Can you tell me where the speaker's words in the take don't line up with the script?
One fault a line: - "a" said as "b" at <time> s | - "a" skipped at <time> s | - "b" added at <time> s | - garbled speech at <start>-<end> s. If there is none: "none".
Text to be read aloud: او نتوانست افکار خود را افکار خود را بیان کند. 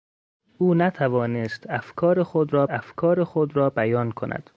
none